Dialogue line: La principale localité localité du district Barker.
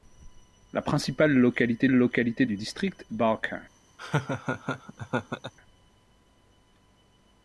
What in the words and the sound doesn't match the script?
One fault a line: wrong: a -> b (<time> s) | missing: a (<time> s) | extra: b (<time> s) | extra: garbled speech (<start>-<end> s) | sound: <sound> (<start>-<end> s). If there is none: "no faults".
sound: laugh (4.0-5.5 s)